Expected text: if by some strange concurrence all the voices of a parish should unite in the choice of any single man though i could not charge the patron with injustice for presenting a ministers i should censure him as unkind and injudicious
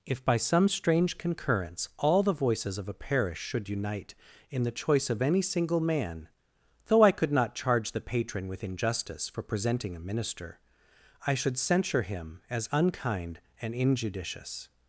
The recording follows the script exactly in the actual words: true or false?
false